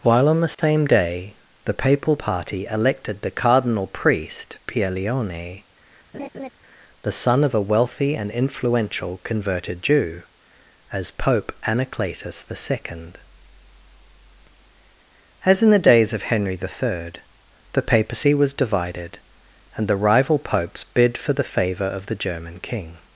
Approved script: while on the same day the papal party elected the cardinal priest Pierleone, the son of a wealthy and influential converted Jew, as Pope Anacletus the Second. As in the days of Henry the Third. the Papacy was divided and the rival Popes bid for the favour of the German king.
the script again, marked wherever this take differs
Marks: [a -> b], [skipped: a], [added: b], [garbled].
while on the same day the papal party elected the cardinal priest Pierleone, the son of a wealthy and influential converted Jew, as Pope Anacletus the Second. As in the days of Henry the Third. the Papacy was divided and the rival Popes bid for the favour of the German king.